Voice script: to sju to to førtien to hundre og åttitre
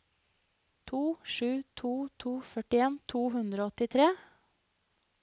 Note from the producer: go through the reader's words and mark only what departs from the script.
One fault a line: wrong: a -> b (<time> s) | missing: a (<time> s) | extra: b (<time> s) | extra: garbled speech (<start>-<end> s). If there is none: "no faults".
no faults